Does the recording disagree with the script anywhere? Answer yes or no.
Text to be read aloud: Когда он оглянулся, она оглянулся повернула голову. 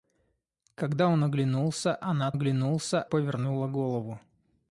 no